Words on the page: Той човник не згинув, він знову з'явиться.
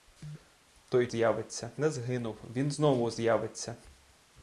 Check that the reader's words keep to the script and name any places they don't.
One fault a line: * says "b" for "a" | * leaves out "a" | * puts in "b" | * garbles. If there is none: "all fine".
* says "з'явиться" for "човник"